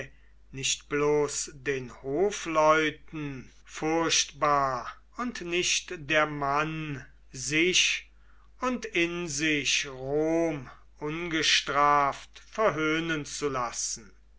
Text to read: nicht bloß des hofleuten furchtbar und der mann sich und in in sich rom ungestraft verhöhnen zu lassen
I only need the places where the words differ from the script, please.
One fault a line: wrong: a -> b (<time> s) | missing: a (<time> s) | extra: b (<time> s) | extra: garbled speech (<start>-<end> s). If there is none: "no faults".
wrong: des -> den (1.5 s)
extra: nicht (5.4 s)
missing: in (9.3 s)